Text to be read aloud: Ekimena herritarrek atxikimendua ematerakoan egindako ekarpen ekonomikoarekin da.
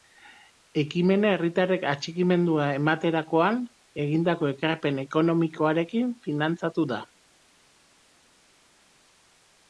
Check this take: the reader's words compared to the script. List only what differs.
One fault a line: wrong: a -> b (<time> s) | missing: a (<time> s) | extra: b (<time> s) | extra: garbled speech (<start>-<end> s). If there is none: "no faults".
extra: finantzatu (6.3 s)